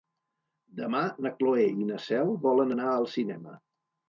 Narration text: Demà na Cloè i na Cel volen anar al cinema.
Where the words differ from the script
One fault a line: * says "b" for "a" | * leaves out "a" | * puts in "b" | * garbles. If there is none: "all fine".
all fine